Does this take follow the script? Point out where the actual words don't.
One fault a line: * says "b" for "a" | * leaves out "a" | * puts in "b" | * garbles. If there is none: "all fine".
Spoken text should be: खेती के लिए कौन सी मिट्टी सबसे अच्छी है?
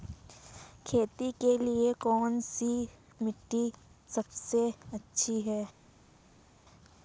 all fine